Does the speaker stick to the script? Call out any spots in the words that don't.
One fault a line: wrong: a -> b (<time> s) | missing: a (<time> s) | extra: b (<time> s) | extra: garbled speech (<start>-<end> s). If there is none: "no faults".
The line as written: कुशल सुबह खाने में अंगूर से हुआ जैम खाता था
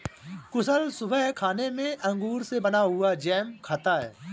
extra: बना (2.6 s)
wrong: था -> है (4.0 s)